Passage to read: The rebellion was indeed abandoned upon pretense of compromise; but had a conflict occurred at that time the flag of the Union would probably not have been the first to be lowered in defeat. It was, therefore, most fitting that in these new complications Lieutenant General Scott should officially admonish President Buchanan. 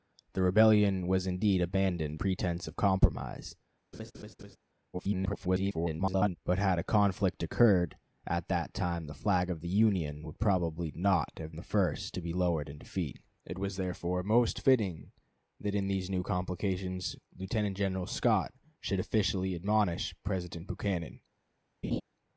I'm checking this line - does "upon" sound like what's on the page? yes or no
no